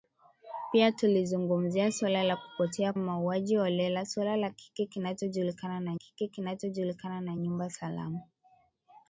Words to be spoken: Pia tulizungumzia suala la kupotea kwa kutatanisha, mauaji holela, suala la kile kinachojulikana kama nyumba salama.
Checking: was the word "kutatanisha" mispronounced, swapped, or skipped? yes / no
yes